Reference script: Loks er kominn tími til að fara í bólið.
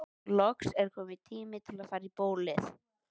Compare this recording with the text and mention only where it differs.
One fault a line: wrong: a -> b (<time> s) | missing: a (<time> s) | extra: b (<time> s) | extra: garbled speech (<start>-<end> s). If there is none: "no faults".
no faults